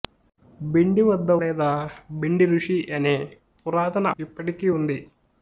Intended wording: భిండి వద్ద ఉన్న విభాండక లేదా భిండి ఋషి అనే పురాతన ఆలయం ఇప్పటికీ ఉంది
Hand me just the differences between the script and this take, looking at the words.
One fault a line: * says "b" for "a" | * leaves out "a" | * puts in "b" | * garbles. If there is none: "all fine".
* leaves out "ఉన్న విభాండక"
* leaves out "ఆలయం"